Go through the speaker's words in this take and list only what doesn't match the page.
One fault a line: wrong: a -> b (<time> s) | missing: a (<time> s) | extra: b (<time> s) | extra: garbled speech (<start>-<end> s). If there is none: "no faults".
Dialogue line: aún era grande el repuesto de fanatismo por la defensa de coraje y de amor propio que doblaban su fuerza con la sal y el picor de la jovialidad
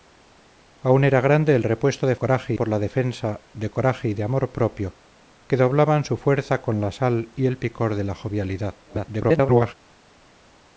wrong: fanatismo -> coraje (2.2 s)
extra: garbled speech (8.9-9.7 s)